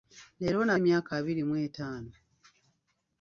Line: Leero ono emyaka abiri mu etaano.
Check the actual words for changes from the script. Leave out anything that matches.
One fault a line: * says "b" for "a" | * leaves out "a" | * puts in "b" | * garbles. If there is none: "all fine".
all fine